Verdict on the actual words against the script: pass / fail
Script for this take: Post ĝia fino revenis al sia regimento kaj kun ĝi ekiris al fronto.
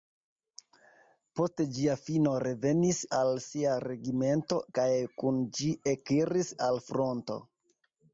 pass